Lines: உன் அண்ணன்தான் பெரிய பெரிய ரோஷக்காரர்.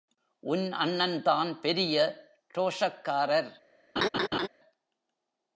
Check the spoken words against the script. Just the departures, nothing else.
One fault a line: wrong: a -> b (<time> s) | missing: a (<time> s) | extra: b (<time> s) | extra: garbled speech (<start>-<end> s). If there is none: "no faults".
missing: பெரிய (2.0 s)